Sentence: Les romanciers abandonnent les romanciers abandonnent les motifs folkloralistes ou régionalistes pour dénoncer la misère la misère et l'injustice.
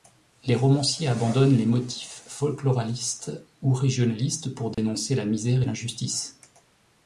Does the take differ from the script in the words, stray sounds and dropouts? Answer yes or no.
yes